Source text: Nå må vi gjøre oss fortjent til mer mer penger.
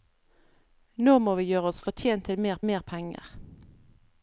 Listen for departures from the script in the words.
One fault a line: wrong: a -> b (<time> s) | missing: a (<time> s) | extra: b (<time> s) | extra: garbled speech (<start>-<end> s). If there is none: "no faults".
no faults